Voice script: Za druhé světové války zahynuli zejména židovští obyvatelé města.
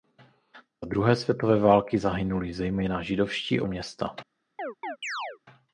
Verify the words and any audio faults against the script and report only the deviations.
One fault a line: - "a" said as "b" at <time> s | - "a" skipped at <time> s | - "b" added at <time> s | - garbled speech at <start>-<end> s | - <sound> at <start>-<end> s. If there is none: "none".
- "obyvatelé" skipped at 3.6 s
- chirp at 4.6-5.4 s